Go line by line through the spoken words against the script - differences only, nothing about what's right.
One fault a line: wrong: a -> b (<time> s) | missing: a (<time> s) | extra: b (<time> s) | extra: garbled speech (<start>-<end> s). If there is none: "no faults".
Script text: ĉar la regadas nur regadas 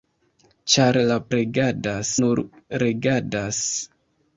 no faults